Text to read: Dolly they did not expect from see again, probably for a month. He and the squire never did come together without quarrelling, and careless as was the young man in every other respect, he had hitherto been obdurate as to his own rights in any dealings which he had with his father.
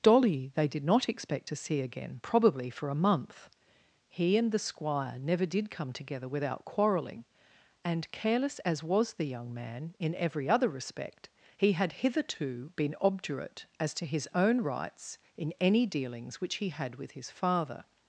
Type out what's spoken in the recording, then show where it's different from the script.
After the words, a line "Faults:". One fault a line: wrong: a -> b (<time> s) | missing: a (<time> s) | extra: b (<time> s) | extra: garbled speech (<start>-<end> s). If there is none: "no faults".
Dolly they did not expect to see again, probably for a month. He and the squire never did come together without quarrelling, and careless as was the young man in every other respect, he had hitherto been obdurate as to his own rights in any dealings which he had with his father.
Faults:
wrong: from -> to (1.5 s)